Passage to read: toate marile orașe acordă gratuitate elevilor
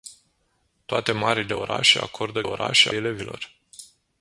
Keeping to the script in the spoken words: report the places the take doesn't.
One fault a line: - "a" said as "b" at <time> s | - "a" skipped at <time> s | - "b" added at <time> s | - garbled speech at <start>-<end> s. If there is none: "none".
- "gratuitate" said as "orașe" at 2.4 s